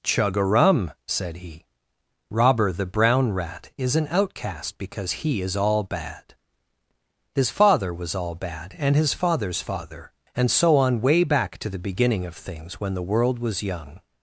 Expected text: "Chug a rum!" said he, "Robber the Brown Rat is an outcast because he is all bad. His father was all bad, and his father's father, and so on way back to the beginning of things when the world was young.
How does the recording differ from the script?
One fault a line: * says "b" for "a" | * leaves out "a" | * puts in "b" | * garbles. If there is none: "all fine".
all fine